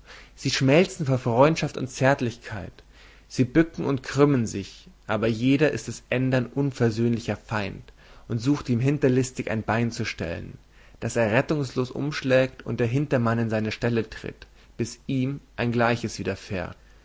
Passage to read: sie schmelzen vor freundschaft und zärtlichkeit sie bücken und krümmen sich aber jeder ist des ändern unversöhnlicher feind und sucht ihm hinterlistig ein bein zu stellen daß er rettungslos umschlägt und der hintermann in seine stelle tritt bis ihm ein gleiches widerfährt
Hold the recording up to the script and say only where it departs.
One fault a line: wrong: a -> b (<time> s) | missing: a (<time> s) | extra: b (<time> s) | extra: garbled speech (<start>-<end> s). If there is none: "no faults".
no faults